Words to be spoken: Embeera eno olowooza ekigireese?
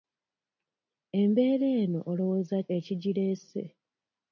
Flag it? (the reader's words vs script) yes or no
no